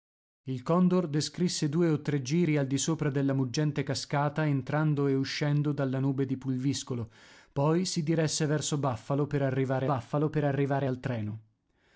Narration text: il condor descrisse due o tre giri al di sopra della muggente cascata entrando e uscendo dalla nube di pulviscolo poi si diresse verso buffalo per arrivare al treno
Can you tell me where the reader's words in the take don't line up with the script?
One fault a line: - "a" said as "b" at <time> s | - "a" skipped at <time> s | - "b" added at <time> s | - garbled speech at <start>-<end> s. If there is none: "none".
- "buffalo per arrivare" added at 9.8 s